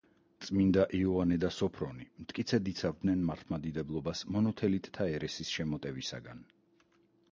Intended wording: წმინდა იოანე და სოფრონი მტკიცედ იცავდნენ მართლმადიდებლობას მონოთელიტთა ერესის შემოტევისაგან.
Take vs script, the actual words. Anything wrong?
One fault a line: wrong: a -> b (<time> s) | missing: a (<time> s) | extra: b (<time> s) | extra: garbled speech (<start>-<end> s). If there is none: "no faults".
no faults